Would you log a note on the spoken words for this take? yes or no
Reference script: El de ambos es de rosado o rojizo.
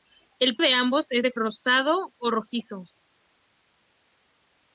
no